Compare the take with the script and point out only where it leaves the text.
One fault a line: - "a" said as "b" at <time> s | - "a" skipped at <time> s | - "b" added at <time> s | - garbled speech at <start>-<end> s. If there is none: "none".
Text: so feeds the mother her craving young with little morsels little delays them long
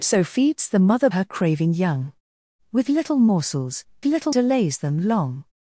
none